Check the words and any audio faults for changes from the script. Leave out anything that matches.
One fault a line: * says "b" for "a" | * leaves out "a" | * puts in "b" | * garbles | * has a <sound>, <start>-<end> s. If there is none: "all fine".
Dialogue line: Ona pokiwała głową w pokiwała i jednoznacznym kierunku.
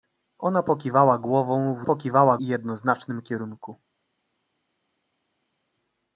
all fine